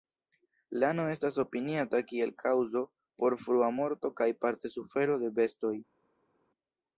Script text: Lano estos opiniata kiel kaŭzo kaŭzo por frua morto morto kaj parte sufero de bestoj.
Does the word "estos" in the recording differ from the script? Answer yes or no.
yes